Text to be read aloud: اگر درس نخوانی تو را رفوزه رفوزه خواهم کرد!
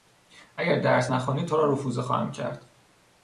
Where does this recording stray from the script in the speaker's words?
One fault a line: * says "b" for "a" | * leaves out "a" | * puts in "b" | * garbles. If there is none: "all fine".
* leaves out "رفوزه"